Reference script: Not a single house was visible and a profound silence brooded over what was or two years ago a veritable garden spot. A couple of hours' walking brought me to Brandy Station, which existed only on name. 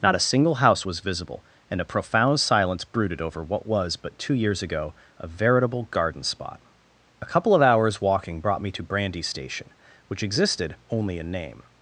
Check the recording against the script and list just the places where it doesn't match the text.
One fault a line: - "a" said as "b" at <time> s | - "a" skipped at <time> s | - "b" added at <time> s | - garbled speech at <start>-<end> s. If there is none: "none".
- "or" said as "but" at 4.0 s
- "on" said as "in" at 11.2 s